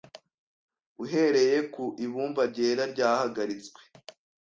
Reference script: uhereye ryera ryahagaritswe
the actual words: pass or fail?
fail